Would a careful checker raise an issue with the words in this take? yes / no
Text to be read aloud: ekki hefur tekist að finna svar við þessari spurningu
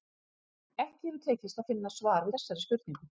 yes